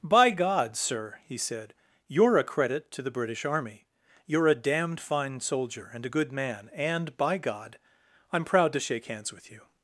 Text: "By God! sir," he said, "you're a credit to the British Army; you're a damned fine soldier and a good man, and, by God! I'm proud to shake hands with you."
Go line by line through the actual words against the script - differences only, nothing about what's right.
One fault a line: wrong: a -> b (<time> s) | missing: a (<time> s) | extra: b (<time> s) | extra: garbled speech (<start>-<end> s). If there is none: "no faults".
no faults